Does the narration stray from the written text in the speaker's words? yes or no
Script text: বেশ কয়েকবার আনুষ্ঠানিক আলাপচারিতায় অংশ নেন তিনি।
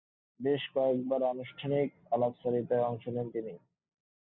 no